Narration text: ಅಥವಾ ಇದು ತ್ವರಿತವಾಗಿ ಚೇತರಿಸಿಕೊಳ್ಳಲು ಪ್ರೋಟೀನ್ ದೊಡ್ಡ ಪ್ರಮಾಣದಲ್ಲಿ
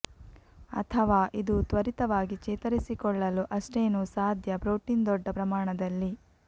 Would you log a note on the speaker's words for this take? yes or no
yes